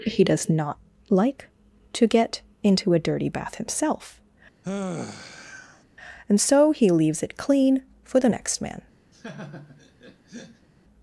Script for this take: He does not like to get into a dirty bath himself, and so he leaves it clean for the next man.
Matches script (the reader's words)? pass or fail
pass